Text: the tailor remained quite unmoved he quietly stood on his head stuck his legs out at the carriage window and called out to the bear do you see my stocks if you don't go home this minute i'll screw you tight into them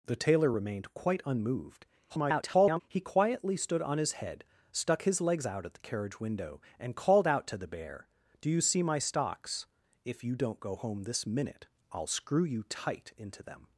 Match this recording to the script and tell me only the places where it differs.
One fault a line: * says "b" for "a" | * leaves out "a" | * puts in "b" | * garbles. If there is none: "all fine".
* garbles